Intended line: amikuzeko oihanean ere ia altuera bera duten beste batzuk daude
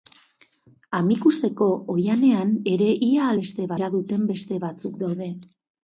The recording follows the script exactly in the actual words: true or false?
false